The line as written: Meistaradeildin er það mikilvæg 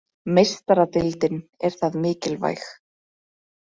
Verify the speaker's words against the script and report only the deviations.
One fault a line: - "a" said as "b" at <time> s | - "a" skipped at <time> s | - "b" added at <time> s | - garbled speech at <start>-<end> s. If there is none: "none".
none